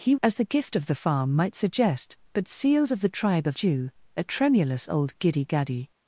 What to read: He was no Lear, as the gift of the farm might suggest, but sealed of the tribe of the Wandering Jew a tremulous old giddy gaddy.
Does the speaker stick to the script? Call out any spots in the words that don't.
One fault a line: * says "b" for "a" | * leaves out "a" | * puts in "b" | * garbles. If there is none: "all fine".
* leaves out "was no Lear"
* leaves out "the Wandering"